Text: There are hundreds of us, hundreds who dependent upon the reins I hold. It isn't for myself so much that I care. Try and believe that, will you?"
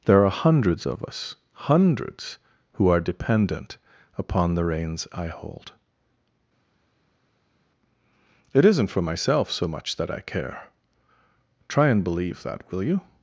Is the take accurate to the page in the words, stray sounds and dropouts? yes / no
no